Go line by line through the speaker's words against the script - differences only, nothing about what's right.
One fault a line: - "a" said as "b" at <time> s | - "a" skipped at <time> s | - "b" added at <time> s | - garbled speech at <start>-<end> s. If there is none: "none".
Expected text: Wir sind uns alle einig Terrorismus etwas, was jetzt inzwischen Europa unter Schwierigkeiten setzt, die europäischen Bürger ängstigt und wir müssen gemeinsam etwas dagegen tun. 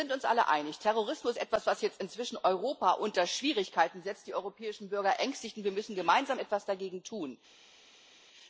none